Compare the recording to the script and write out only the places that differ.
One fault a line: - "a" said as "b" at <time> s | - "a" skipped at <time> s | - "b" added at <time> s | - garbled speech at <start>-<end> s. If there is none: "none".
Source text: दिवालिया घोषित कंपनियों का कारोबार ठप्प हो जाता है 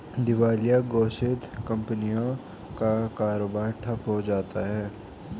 none